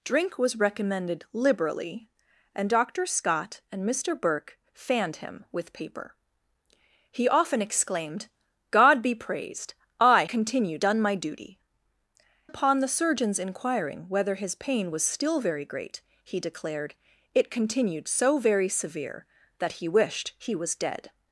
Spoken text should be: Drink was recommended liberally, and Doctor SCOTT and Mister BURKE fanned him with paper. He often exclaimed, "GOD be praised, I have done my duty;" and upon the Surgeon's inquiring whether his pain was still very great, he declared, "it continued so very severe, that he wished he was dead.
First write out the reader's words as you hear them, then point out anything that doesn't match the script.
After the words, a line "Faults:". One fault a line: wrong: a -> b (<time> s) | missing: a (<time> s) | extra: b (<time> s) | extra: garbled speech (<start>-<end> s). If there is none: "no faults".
Drink was recommended liberally, and Doctor SCOTT and Mister BURKE fanned him with paper. He often exclaimed, "GOD be praised, I continued done my duty;" upon the Surgeon's inquiring whether his pain was still very great, he declared, "it continued so very severe, that he wished he was dead.
Faults:
wrong: have -> continued (10.3 s)
missing: and (11.6 s)